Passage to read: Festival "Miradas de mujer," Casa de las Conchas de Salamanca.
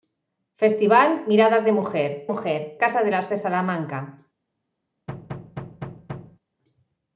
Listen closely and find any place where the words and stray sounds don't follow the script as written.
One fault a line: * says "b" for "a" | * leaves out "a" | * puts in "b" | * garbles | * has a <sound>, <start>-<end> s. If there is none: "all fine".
* puts in "mujer"
* leaves out "Conchas"
* has a thud, 5.1-6.4 s